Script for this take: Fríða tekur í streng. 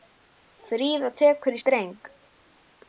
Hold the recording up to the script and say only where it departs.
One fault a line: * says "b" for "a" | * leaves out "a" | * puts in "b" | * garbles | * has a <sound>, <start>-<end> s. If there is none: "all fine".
all fine